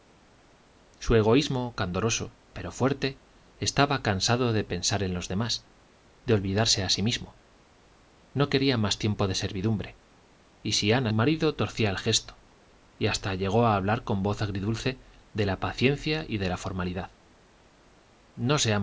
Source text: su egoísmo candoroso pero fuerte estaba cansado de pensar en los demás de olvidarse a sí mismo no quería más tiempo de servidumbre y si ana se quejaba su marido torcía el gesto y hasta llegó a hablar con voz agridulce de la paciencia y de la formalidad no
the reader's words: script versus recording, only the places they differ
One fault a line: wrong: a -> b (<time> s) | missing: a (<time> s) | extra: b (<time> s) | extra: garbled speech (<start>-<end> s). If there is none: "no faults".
missing: se quejaba su (11.1 s)